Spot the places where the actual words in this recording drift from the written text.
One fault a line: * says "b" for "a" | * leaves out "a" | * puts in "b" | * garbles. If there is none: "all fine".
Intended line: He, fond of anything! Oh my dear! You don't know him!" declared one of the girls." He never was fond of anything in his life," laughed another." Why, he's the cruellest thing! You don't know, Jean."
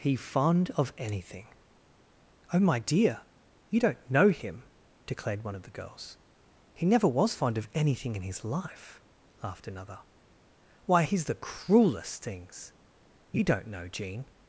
* says "things" for "thing"